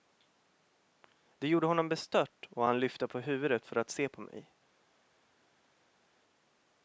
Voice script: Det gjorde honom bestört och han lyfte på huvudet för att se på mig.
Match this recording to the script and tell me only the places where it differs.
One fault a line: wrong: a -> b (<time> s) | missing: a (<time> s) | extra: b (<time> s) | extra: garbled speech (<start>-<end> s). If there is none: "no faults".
no faults